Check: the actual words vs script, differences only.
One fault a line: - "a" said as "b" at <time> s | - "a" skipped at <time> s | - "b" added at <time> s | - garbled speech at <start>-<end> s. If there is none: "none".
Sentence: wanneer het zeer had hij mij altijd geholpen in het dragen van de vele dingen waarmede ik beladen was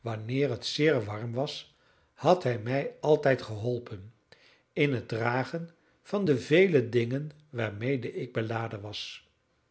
- "warm was" added at 1.0 s